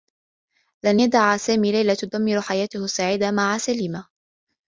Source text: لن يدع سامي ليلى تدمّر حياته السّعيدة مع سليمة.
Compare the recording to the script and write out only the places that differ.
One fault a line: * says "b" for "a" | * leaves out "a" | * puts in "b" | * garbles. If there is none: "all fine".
all fine